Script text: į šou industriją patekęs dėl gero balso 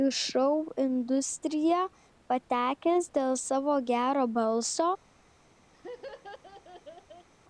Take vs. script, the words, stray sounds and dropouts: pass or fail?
fail